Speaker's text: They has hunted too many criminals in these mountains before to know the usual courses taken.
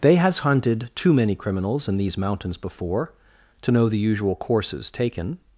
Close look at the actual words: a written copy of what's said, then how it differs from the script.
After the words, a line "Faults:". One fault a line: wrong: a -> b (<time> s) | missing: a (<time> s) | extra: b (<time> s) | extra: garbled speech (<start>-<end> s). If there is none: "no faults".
They has hunted too many criminals in these mountains before to know the usual courses taken.
Faults:
no faults